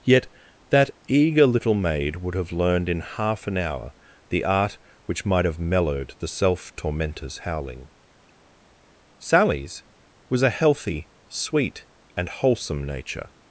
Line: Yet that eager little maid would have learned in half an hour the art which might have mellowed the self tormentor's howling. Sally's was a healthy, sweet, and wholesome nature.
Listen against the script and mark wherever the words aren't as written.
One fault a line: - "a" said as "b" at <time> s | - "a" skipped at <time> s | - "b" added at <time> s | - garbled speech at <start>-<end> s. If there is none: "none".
none